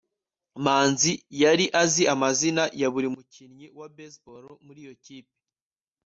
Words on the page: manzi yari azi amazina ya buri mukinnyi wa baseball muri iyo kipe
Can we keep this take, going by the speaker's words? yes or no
yes